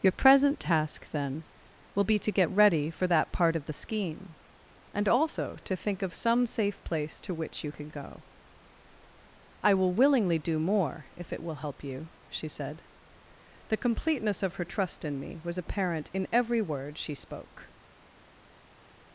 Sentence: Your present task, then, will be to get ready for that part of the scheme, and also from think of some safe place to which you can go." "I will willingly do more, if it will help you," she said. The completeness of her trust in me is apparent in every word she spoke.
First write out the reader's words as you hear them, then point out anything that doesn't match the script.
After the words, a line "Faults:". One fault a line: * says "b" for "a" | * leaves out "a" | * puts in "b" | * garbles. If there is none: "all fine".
Your present task, then, will be to get ready for that part of the scheme, and also to think of some safe place to which you can go." "I will willingly do more, if it will help you," she said. The completeness of her trust in me was apparent in every word she spoke.
Faults:
* says "to" for "from"
* says "was" for "is"